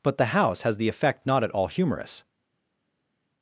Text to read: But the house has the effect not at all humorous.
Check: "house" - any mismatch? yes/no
no